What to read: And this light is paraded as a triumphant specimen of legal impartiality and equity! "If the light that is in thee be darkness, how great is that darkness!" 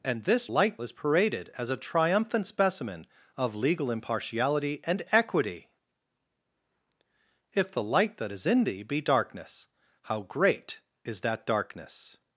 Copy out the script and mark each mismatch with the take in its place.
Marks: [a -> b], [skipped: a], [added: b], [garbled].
And this light is paraded as a triumphant specimen of legal impartiality and equity! "If the light that is in thee be darkness, how great is that darkness!"